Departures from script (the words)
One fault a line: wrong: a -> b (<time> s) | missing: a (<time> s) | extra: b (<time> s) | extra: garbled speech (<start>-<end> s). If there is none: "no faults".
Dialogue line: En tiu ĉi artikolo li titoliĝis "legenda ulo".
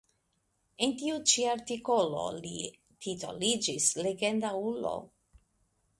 no faults